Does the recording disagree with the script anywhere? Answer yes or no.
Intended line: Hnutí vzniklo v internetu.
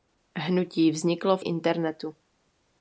no